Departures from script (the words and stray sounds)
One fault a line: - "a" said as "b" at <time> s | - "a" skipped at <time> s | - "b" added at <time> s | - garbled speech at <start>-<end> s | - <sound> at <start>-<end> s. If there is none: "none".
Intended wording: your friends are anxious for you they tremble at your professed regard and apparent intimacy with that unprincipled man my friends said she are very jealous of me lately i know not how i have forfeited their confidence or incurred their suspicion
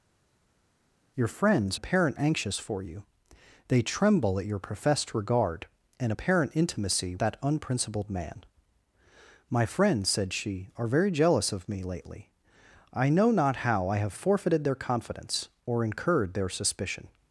- "are" said as "apparent" at 1.7 s
- "with" skipped at 7.2 s